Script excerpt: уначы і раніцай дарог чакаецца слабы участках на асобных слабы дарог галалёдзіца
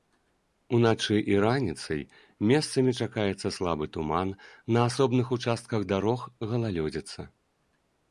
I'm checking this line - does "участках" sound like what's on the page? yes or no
no